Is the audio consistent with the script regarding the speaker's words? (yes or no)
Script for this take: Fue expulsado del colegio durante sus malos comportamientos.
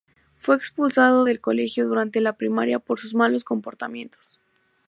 no